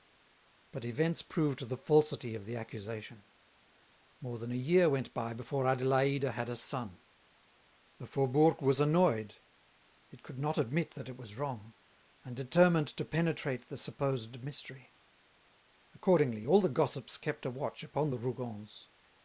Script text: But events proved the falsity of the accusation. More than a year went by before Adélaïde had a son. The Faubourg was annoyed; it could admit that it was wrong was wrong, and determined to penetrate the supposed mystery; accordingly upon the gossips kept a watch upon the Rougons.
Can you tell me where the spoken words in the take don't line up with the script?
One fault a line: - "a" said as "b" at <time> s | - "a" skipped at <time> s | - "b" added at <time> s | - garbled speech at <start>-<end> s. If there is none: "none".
- "not" added at 10.4 s
- "was wrong" skipped at 11.7 s
- "upon" said as "all" at 16.5 s